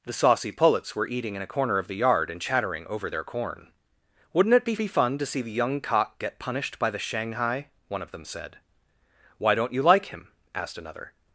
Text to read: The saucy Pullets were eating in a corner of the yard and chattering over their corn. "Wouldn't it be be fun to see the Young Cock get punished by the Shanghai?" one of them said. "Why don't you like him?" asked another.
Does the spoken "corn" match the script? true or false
true